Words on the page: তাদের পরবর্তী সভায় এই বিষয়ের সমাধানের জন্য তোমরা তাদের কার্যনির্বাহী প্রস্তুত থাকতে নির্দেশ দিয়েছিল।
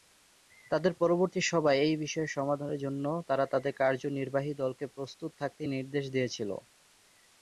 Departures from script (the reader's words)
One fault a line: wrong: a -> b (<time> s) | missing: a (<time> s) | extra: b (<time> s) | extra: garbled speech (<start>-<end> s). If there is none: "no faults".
wrong: তোমরা -> তারা (3.3 s)
extra: দলকে (4.6 s)